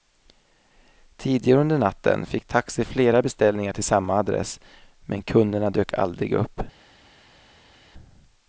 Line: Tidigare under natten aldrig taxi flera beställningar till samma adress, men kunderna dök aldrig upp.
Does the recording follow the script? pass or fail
fail